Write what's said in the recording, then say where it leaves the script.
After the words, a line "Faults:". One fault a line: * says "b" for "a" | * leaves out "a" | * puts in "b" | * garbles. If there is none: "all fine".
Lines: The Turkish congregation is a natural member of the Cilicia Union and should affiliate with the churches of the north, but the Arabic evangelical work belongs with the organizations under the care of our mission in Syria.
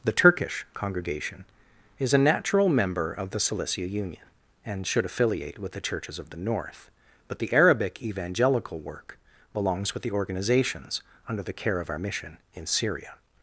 The Turkish congregation is a natural member of the Cilicia Union and should affiliate with the churches of the north, but the Arabic evangelical work belongs with the organizations under the care of our mission in Syria.
Faults:
all fine